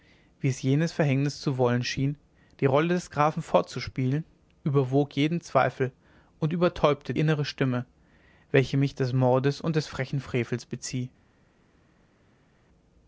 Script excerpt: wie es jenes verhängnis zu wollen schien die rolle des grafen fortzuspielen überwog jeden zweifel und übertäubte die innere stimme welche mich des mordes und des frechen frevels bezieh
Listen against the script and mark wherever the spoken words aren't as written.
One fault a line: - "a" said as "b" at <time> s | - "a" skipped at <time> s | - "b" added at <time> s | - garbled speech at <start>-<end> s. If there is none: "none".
- "die" skipped at 7.1 s